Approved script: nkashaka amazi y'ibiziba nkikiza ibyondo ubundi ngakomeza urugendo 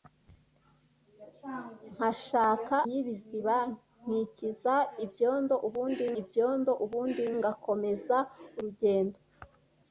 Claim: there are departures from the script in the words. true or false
true